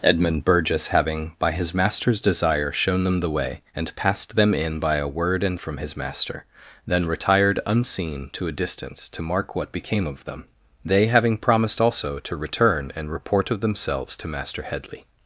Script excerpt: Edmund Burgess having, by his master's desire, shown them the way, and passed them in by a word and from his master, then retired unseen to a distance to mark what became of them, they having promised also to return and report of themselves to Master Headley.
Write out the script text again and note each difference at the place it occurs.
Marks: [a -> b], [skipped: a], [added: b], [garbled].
Edmund Burgess having, by his master's desire, shown them the way, and passed them in by a word and from his master, then retired unseen to a distance to mark what became of them, they having promised also to return and report of themselves to Master Headley.